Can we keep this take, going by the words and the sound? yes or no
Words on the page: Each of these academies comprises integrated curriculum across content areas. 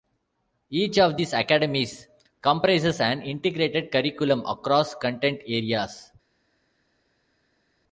no